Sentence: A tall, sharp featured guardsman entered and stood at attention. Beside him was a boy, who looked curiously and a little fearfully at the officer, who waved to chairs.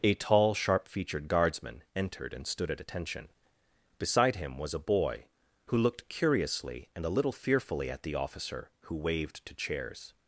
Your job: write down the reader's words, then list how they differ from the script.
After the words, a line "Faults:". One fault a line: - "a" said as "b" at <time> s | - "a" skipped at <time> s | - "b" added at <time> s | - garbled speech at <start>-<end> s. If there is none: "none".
A tall, sharp featured guardsman entered and stood at attention. Beside him was a boy, who looked curiously and a little fearfully at the officer, who waved to chairs.
Faults:
none